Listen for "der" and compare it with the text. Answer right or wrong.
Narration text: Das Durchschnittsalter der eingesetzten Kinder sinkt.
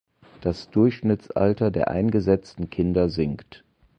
right